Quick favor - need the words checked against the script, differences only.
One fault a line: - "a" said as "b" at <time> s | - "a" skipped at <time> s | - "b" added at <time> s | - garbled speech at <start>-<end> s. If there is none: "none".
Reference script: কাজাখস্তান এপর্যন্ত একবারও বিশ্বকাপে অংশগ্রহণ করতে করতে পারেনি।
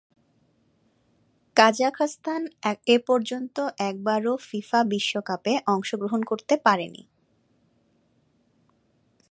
- "ফিফা" added at 4.5 s
- "করতে" skipped at 6.5 s